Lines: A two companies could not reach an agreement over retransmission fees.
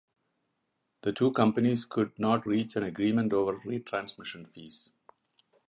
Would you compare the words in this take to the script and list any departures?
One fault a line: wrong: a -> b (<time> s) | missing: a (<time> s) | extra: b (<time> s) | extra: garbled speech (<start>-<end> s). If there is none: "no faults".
wrong: A -> The (1.0 s)